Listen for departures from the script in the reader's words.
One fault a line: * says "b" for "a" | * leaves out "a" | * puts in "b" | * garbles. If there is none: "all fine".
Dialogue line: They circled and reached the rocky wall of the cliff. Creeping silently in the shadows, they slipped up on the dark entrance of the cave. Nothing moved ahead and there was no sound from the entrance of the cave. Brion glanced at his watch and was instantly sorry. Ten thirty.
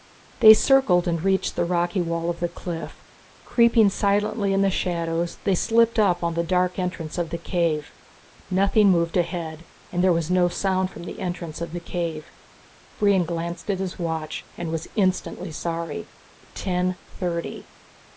all fine